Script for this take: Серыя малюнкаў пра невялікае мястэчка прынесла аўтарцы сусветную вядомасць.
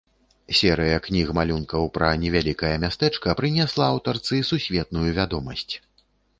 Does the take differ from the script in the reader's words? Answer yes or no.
yes